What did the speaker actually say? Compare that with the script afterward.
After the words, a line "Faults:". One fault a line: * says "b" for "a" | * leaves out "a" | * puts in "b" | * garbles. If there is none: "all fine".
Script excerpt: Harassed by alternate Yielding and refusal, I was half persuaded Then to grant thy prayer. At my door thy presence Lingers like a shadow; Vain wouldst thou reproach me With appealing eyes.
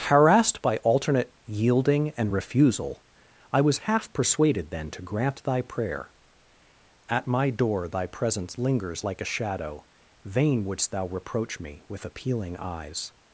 Harassed by alternate Yielding and refusal, I was half persuaded Then to grant thy prayer. At my door thy presence Lingers like a shadow; Vain wouldst thou reproach me With appealing eyes.
Faults:
all fine